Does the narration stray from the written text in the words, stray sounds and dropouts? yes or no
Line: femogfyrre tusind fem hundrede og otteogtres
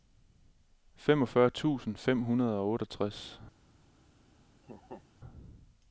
yes